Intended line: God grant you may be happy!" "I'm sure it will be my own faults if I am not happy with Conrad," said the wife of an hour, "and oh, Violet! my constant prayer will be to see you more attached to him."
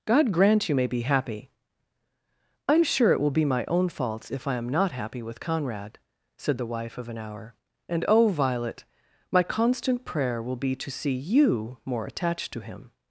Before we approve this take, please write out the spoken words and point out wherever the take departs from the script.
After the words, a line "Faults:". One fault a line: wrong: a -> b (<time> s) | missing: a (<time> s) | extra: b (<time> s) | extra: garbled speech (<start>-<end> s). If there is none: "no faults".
God grant you may be happy!" "I'm sure it will be my own faults if I am not happy with Conrad," said the wife of an hour, "and oh, Violet! my constant prayer will be to see you more attached to him."
Faults:
no faults